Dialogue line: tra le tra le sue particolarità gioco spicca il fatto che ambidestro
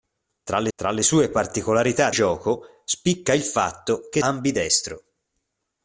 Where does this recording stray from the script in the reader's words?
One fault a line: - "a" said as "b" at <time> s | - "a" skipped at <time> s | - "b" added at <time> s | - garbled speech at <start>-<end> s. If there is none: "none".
none